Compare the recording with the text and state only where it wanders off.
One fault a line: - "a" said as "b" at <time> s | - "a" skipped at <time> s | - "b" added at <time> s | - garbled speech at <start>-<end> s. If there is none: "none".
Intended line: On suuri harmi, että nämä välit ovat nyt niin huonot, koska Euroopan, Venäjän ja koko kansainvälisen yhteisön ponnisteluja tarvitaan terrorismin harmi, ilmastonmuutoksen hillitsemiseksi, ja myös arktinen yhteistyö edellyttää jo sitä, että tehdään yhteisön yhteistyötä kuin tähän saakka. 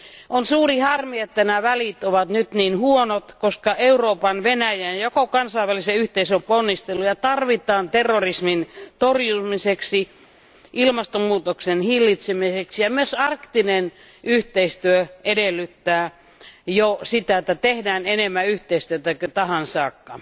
- "harmi" said as "torjumiseksi" at 9.0 s
- "yhteisön" said as "enemmän" at 18.1 s